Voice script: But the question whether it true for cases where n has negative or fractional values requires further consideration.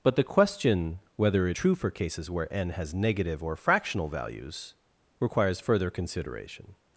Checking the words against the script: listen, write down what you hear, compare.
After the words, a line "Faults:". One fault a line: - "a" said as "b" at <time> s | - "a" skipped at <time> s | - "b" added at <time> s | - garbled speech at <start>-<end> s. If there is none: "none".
But the question whether it true for cases where n has negative or fractional values requires further consideration.
Faults:
none